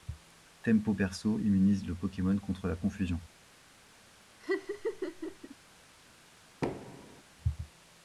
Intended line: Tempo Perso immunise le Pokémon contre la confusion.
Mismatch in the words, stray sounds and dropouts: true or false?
true